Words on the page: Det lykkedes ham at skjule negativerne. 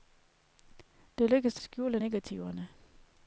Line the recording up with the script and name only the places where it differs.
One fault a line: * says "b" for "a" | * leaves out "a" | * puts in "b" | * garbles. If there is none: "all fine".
* leaves out "ham at"